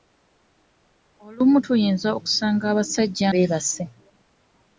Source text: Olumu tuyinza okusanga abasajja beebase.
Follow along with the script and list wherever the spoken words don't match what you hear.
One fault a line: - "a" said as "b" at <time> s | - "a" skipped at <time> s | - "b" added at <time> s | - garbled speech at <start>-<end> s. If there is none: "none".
none